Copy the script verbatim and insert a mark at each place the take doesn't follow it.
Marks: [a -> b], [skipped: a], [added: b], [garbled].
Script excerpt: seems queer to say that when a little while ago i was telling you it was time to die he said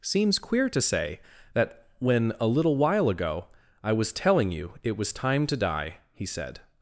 seems queer to say that when a little while ago i was telling you it was time to die he said